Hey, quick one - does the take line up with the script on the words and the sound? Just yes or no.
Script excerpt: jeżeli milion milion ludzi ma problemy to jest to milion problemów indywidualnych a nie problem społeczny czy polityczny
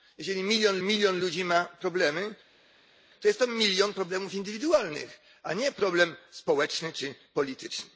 yes